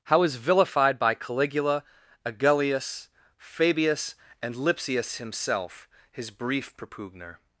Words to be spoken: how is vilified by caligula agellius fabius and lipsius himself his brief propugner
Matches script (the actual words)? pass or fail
pass